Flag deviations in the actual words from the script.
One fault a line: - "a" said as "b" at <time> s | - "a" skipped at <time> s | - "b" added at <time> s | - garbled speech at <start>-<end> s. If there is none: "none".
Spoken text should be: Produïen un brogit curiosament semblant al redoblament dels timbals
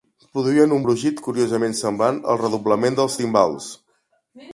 none